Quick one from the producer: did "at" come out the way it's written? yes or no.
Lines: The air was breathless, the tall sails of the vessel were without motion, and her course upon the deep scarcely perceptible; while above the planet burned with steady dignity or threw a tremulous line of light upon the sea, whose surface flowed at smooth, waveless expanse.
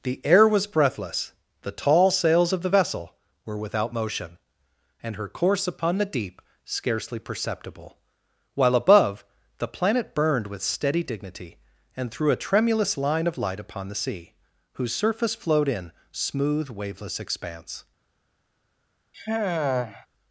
no